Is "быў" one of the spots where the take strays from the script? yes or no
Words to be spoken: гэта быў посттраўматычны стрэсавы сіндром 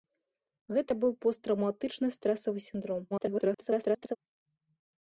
no